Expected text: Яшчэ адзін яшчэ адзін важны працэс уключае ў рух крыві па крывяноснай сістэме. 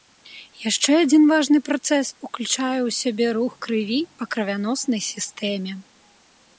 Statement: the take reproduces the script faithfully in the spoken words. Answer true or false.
false